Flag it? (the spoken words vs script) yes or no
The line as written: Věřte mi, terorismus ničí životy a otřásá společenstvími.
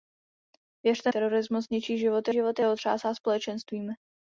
yes